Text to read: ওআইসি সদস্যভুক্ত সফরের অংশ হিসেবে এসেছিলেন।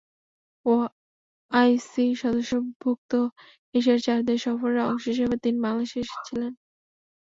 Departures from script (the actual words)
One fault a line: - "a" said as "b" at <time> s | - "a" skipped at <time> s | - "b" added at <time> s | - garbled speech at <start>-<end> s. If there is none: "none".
- "এশিয়ার চার দেশ" added at 3.8 s
- "তিনি বাংলাদেশে" added at 5.4 s